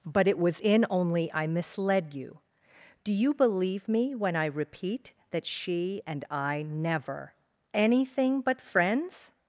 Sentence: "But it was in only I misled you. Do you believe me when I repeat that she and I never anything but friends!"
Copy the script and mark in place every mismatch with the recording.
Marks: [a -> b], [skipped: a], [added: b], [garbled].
"But it was in only I misled you. Do you believe me when I repeat that she and I never anything but friends!"